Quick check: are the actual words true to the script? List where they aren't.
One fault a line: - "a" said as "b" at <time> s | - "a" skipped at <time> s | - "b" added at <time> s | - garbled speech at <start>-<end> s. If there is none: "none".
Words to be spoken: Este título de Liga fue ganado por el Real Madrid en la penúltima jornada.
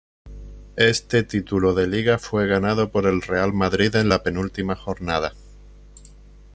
none